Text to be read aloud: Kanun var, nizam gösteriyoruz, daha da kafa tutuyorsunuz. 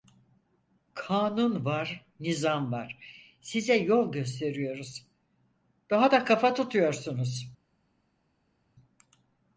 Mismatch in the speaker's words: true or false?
true